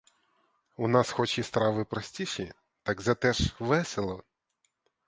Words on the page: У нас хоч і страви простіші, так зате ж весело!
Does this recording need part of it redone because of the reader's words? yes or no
no